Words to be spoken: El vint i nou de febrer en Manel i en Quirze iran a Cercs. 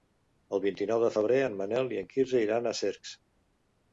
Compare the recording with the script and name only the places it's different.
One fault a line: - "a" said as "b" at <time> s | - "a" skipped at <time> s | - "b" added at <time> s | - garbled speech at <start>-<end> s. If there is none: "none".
none